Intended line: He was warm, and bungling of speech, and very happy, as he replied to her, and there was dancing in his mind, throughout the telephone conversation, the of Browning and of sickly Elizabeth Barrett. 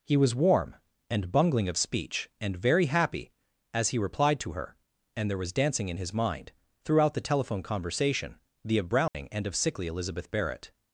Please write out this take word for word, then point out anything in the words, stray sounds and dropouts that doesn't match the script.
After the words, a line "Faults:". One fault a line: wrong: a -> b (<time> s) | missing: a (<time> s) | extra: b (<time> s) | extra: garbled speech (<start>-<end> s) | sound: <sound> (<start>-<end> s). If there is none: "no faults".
He was warm, and bungling of speech, and very happy, as he replied to her, and there was dancing in his mind, throughout the telephone conversation, the of Browning and of sickly Elizabeth Barrett.
Faults:
sound: dropout (9.1-9.1 s)